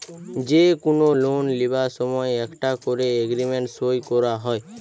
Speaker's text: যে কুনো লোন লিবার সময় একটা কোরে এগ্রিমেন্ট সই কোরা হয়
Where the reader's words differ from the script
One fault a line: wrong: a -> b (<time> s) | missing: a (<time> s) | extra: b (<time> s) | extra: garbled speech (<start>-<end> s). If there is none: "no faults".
no faults